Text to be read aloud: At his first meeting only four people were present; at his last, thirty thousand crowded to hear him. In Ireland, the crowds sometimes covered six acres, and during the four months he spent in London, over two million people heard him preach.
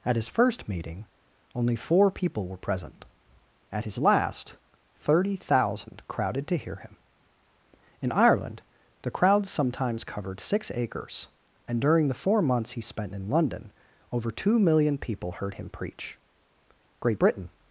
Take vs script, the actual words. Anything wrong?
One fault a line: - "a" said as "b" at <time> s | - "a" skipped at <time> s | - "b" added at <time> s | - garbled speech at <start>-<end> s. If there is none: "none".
- "Great Britain" added at 17.0 s